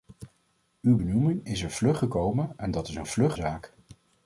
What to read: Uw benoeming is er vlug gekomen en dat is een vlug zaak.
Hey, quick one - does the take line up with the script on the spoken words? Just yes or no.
yes